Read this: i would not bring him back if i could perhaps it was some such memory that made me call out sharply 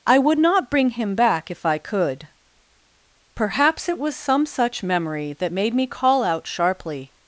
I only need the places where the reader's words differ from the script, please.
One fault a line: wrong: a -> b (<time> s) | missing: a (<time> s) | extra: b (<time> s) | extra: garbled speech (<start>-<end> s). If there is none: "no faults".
no faults